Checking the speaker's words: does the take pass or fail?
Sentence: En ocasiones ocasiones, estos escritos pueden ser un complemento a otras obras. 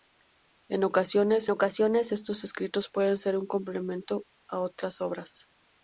pass